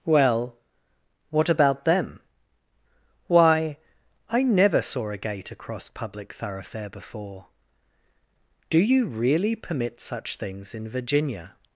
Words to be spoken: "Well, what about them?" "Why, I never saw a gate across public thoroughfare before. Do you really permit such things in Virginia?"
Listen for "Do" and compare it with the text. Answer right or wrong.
right